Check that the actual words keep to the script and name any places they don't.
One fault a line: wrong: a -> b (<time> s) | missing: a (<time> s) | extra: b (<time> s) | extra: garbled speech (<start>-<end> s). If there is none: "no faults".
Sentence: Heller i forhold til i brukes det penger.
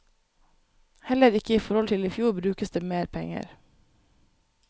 extra: ikke (1.3 s)
extra: fjor (2.1 s)
extra: mer (2.8 s)